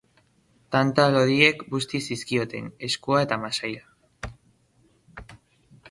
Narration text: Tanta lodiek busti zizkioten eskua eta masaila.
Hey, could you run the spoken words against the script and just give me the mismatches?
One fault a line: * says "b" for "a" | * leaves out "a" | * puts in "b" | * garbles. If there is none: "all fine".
all fine